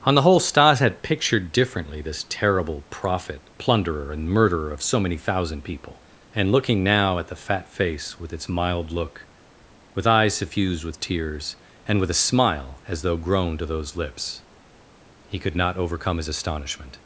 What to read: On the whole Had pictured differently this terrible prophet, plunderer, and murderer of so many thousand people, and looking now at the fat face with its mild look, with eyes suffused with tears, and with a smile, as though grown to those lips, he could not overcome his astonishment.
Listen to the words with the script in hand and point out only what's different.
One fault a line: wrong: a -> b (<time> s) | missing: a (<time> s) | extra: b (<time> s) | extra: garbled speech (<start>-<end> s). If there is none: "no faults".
extra: Stas (0.4 s)